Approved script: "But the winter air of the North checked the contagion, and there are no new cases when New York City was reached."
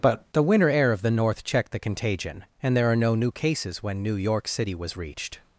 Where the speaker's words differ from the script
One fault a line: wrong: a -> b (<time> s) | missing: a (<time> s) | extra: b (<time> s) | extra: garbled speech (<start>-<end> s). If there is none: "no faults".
no faults